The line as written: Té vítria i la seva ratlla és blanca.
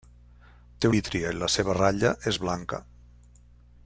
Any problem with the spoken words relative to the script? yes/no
no